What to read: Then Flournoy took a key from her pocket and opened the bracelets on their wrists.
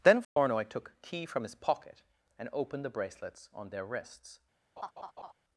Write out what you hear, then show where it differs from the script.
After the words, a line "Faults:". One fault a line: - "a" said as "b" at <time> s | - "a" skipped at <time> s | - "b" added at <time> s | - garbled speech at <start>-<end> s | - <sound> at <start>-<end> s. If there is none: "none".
Then Flournoy took a key from his pocket and opened the bracelets on their wrists.
Faults:
- dropout at 0.2-0.4 s
- "her" said as "his" at 1.4 s
- laugh at 4.8-5.3 s